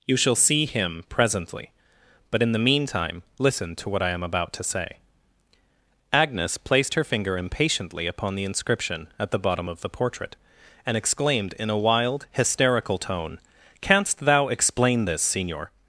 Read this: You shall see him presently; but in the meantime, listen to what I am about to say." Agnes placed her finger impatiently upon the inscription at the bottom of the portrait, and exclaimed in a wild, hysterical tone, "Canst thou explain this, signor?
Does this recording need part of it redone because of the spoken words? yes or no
no